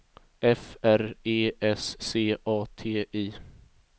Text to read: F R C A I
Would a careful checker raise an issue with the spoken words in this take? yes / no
yes